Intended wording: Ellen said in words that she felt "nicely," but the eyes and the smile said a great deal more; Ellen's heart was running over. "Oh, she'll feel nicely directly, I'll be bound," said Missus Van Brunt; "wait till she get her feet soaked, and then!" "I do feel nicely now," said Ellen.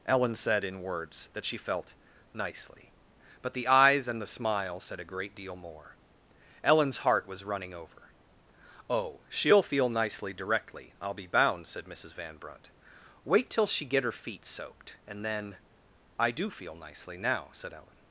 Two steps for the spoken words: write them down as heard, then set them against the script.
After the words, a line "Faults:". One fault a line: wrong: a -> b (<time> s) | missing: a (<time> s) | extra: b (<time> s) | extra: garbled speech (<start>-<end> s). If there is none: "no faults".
Ellen said in words that she felt "nicely," but the eyes and the smile said a great deal more; Ellen's heart was running over. "Oh, she'll feel nicely directly, I'll be bound," said Missus Van Brunt; "wait till she get her feet soaked, and then!" "I do feel nicely now," said Ellen.
Faults:
no faults